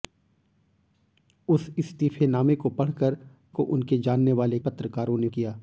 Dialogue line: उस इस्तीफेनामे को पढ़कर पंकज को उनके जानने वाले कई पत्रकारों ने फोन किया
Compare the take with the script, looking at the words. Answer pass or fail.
fail